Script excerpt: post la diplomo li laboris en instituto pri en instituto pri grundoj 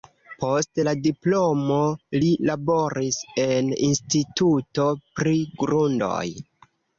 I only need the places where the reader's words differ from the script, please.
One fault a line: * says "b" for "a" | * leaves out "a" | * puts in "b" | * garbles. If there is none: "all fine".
* leaves out "en instituto pri"